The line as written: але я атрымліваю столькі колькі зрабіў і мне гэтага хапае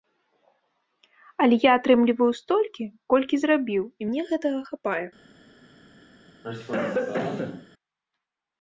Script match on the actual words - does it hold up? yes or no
yes